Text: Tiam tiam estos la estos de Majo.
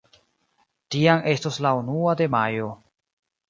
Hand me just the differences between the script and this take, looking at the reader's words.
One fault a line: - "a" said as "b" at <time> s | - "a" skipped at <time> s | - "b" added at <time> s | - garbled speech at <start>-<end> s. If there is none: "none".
- "tiam" skipped at 1.2 s
- "estos" said as "unua" at 1.8 s